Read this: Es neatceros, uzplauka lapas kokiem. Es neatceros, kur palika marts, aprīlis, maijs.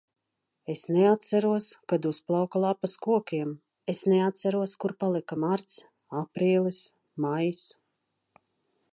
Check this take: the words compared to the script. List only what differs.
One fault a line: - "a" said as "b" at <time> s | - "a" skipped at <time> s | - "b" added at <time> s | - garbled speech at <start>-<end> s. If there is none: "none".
- "kad" added at 1.9 s